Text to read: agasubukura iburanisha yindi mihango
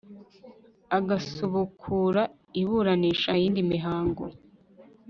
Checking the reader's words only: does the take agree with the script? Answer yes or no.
yes